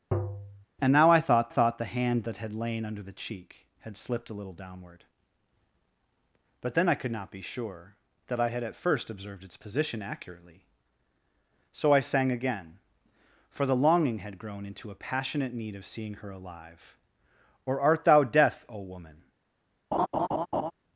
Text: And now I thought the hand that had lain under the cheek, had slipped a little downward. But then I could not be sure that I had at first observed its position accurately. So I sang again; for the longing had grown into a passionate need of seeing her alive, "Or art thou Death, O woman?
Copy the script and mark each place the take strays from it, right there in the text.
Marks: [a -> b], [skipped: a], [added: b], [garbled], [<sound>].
[tap] And now I thought [added: thought] the hand that had lain under the cheek, had slipped a little downward. But then I could not be sure that I had at first observed its position accurately. So I sang again; for the longing had grown into a passionate need of seeing her alive, "Or art thou Death, O woman? [laugh]